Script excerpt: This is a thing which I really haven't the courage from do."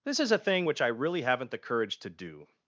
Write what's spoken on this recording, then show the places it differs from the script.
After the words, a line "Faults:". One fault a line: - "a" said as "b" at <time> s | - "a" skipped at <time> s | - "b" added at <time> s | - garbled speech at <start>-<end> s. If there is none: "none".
This is a thing which I really haven't the courage to do."
Faults:
- "from" said as "to" at 2.0 s